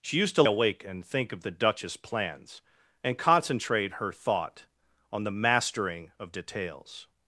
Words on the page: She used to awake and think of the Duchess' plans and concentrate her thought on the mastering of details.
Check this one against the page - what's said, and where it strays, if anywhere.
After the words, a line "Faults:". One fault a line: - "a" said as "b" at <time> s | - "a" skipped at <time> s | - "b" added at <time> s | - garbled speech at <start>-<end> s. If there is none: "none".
She used to awake and think of the Duchess' plans and concentrate her thought on the mastering of details.
Faults:
none